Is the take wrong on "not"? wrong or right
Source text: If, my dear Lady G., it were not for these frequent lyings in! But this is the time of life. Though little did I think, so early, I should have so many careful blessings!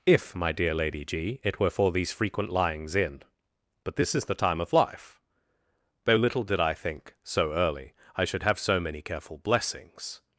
wrong